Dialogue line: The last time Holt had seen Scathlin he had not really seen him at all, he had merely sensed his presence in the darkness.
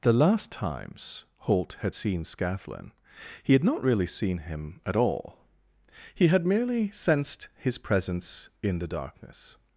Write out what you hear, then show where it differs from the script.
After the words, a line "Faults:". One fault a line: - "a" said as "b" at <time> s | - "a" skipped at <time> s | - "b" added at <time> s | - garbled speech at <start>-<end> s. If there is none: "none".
The last times Holt had seen Scathlin he had not really seen him at all, he had merely sensed his presence in the darkness.
Faults:
- "time" said as "times" at 0.5 s